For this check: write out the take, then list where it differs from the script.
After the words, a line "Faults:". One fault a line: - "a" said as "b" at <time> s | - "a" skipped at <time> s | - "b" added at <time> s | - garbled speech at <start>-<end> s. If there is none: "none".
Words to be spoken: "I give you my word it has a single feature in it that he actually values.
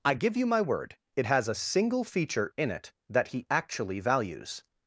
"I give you my word it has a single feature in it that he actually values.
Faults:
none